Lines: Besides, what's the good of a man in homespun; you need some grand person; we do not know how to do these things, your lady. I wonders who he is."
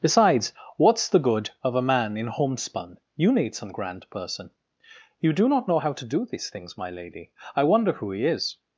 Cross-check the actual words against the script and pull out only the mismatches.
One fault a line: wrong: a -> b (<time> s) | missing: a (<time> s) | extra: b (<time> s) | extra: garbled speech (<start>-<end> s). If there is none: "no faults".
wrong: we -> you (5.2 s)
wrong: your -> my (6.8 s)
wrong: wonders -> wonder (7.6 s)